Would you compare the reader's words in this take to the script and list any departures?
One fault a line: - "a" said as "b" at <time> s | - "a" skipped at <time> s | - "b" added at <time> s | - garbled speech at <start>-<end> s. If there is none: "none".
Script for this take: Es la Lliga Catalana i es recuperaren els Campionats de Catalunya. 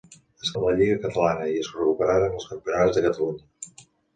none